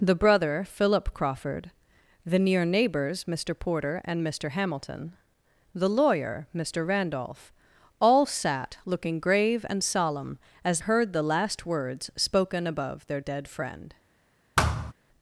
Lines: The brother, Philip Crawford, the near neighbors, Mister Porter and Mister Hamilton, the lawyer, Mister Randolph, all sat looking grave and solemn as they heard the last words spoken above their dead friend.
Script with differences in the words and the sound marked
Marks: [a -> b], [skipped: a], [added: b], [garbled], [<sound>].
The brother, Philip Crawford, the near neighbors, Mister Porter and Mister Hamilton, the lawyer, Mister Randolph, all sat looking grave and solemn as [skipped: they] heard the last words spoken above their dead friend. [thud]